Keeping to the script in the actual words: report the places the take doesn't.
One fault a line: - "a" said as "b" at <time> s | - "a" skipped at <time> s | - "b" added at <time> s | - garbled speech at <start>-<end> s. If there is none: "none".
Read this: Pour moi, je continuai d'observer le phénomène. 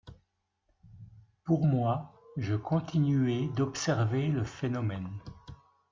none